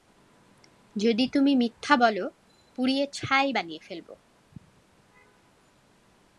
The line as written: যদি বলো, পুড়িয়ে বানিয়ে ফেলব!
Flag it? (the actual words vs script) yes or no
yes